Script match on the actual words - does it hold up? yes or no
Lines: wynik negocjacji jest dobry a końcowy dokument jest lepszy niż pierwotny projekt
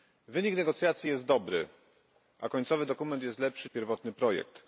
no